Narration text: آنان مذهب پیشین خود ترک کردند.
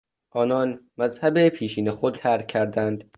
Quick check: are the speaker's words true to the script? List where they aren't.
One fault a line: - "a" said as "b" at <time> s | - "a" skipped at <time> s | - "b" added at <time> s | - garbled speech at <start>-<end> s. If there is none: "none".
none